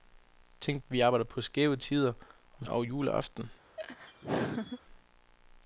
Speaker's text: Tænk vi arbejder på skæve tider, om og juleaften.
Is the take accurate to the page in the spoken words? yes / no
yes